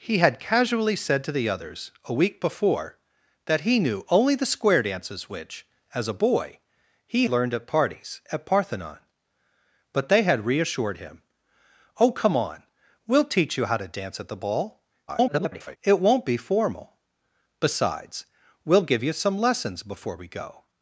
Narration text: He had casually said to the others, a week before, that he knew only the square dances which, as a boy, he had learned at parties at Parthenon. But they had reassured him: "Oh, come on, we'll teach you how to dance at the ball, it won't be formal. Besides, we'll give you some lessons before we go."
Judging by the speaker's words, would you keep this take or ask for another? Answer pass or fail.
fail